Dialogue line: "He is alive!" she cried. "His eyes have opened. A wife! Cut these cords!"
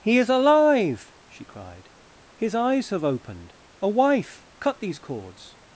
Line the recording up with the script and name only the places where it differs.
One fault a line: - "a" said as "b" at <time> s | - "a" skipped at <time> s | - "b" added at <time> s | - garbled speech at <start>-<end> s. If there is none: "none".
none